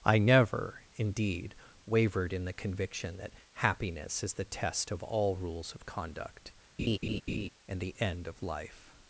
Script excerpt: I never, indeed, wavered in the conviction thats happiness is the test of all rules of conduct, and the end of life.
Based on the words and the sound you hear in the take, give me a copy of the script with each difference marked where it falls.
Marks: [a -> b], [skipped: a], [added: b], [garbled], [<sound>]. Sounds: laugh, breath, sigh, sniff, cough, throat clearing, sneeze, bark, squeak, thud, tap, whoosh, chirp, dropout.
I never, indeed, wavered in the conviction [thats -> that] happiness is the test of all rules of conduct, [laugh] and the end of life.